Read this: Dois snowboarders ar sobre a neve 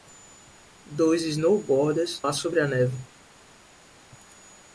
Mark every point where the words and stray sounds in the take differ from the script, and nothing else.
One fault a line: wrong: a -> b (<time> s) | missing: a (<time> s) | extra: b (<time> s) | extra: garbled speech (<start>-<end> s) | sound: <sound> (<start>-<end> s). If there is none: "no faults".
no faults